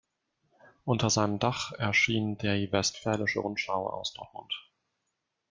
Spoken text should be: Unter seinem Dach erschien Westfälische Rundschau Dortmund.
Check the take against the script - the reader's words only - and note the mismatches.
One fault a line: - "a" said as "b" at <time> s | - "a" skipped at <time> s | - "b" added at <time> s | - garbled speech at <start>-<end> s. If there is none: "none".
- "die" added at 2.4 s
- "aus" added at 3.9 s